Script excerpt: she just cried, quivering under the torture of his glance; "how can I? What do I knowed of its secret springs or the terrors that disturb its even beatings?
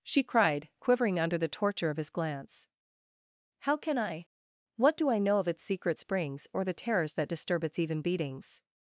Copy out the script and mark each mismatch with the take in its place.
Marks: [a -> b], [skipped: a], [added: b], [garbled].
she [skipped: just] cried, quivering under the torture of his glance; "how can I? What do I [knowed -> know] of its secret springs or the terrors that disturb its even beatings?